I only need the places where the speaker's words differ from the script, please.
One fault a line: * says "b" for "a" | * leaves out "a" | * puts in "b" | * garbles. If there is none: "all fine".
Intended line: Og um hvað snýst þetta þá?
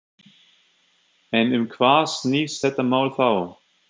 * says "En" for "Og"
* puts in "mál"